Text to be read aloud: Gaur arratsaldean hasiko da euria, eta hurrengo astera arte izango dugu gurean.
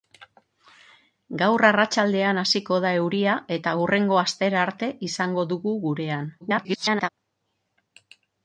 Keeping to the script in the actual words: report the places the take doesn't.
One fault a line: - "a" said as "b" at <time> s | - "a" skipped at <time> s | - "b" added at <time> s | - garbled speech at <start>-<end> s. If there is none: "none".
- garbled speech at 6.4-7.1 s